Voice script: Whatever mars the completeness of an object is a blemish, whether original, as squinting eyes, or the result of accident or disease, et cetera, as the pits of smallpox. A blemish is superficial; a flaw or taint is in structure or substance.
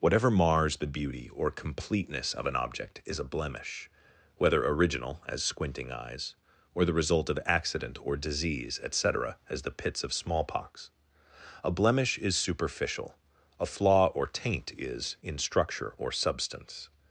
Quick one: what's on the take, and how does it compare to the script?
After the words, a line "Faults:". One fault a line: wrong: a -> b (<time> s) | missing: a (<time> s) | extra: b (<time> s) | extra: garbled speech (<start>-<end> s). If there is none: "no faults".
Whatever mars the beauty or completeness of an object is a blemish, whether original, as squinting eyes, or the result of accident or disease, et cetera, as the pits of smallpox. A blemish is superficial; a flaw or taint is in structure or substance.
Faults:
extra: beauty or (0.9 s)